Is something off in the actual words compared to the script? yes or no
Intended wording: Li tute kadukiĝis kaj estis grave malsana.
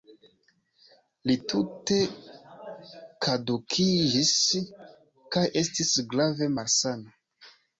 no